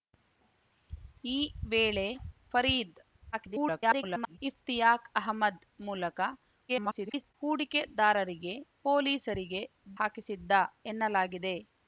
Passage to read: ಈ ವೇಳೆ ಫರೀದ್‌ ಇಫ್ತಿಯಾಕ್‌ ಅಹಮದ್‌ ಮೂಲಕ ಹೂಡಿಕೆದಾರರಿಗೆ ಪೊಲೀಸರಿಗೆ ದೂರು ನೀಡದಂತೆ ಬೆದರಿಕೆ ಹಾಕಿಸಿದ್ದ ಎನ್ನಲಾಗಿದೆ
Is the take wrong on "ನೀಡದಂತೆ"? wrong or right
wrong